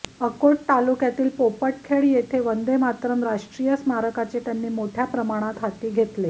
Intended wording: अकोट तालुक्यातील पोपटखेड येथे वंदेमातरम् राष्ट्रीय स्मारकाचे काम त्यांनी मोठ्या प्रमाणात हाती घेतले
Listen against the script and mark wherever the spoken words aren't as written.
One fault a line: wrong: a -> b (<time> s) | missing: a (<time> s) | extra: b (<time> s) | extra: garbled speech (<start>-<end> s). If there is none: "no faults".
missing: काम (4.4 s)